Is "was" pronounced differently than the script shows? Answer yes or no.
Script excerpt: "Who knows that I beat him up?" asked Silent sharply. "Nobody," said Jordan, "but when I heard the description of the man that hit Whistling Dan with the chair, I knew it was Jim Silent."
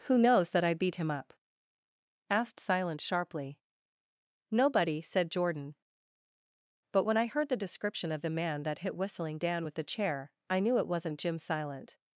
yes